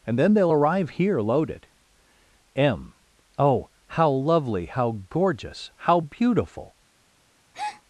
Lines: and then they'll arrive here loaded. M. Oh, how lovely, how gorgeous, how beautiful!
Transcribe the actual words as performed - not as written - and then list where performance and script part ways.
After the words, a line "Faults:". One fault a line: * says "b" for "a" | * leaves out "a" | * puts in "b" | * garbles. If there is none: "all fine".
and then they'll arrive here loaded. M. Oh, how lovely, how gorgeous, how beautiful!
Faults:
all fine